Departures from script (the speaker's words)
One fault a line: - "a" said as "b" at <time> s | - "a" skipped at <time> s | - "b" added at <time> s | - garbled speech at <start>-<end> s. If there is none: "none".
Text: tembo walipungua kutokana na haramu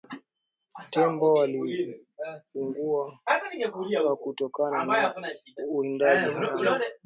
- "uwindaji" added at 5.7 s